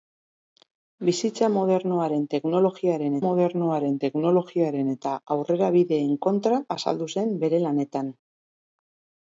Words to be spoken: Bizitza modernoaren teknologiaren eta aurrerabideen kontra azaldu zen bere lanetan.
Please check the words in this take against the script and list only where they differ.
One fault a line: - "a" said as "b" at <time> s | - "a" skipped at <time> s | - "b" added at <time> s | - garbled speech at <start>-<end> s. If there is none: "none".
- "modernoaren teknologiaren" added at 3.3 s